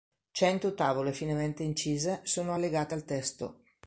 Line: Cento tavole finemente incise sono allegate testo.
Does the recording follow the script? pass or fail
fail